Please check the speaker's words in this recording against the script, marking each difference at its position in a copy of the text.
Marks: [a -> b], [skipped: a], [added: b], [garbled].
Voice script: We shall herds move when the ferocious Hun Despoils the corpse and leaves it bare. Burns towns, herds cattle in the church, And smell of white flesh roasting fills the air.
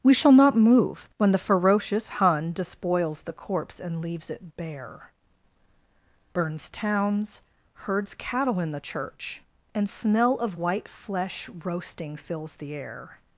We shall [herds -> not] move when the ferocious Hun Despoils the corpse and leaves it bare. Burns towns, herds cattle in the church, And smell of white flesh roasting fills the air.